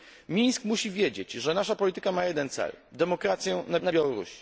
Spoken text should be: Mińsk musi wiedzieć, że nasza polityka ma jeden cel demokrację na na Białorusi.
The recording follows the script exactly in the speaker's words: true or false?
true